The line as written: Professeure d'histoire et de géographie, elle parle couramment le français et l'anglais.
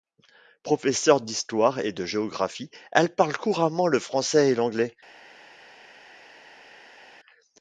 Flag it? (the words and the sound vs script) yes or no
no